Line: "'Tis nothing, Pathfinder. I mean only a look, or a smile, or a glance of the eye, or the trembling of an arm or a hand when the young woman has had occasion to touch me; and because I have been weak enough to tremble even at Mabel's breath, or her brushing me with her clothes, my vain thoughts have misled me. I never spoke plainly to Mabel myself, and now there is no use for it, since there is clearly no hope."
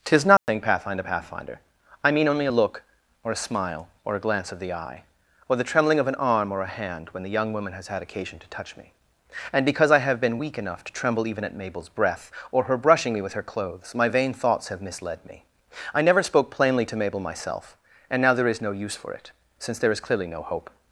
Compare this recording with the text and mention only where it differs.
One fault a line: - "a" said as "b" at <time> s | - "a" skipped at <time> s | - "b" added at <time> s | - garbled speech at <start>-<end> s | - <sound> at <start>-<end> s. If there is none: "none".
- dropout at 0.4-0.5 s
- "Pathfinder" added at 1.0 s